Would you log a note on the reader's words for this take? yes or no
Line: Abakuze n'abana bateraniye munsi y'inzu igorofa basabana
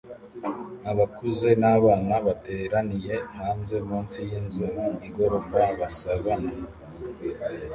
yes